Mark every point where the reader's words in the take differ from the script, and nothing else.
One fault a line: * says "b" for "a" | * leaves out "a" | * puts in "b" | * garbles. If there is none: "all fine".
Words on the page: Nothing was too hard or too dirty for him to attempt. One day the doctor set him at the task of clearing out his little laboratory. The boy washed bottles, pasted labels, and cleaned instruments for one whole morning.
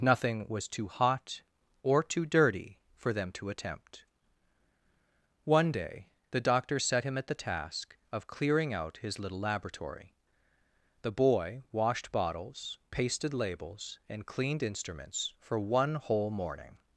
* says "hot" for "hard"
* says "them" for "him"